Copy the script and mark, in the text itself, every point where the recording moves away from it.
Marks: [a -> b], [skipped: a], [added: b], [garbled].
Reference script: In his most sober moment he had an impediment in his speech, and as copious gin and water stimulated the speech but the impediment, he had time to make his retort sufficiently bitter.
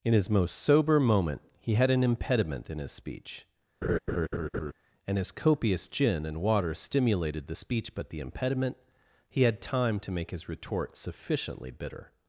In his most sober moment he had an impediment in his speech, and as copious gin and water stimulated the speech but the impediment, he had time to make his retort sufficiently bitter.